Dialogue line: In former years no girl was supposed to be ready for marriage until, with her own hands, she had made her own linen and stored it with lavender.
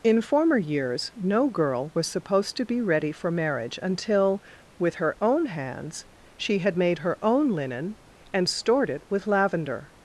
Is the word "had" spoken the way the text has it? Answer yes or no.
yes